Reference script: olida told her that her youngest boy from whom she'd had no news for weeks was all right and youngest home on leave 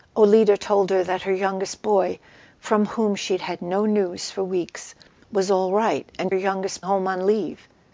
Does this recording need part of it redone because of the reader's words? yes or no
no